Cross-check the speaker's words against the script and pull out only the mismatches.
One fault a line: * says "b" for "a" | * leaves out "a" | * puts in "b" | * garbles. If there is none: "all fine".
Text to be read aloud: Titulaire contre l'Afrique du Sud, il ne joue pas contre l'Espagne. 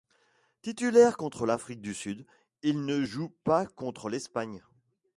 all fine